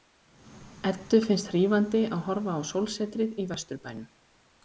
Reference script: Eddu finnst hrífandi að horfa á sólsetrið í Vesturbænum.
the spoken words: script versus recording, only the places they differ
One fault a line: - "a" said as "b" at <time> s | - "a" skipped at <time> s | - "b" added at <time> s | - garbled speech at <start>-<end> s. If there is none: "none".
none